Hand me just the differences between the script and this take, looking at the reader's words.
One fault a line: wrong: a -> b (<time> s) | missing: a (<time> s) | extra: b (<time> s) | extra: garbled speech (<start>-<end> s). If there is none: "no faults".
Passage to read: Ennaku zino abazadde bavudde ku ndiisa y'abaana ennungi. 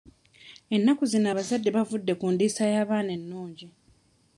no faults